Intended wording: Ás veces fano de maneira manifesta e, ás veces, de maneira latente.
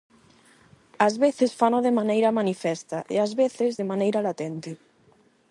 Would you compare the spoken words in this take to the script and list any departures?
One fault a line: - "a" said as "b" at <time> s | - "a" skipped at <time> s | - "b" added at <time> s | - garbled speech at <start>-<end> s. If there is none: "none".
none